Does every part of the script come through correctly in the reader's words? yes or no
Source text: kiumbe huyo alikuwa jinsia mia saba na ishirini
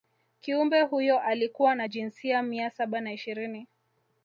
no